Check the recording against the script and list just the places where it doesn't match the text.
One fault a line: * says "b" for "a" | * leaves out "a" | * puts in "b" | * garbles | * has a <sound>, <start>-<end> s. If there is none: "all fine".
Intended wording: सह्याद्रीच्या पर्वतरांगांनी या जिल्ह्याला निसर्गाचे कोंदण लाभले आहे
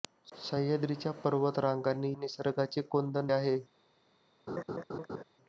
* leaves out "या जिल्ह्याला"
* leaves out "लाभले"
* has a laugh, 4.5-5.2 s